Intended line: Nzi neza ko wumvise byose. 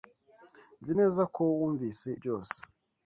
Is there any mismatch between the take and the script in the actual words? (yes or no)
no